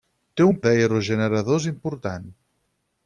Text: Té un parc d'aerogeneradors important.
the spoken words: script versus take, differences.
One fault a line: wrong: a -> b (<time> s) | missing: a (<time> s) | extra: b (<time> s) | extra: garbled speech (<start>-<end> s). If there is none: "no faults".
missing: parc (0.6 s)